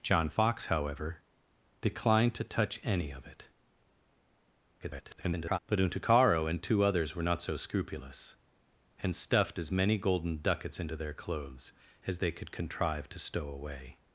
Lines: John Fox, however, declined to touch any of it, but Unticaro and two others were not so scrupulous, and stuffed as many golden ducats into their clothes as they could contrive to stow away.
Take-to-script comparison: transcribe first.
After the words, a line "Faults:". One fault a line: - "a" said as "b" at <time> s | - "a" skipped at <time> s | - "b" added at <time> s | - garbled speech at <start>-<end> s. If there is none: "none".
John Fox, however, declined to touch any of it, [garbled] but Unticaro and two others were not so scrupulous, and stuffed as many golden ducats into their clothes as they could contrive to stow away.
Faults:
- garbled speech at 4.8-5.6 s